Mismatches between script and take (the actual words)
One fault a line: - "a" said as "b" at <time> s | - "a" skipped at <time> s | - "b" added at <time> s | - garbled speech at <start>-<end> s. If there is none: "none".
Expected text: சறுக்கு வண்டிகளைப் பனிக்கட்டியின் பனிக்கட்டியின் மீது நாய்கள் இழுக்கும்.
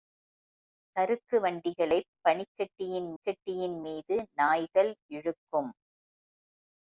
none